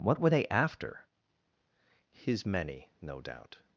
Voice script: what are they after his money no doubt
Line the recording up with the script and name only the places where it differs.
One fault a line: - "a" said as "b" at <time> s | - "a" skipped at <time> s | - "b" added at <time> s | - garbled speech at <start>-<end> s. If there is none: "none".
- "are" said as "were" at 0.2 s
- "money" said as "many" at 2.5 s